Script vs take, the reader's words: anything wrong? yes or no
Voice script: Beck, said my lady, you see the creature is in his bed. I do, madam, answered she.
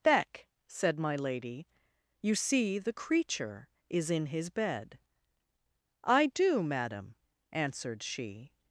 no